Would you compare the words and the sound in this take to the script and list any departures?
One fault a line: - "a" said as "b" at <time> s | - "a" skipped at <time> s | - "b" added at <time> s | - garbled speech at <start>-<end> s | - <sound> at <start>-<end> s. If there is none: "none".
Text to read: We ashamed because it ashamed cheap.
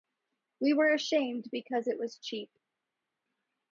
- "were" added at 0.7 s
- "ashamed" said as "was" at 2.0 s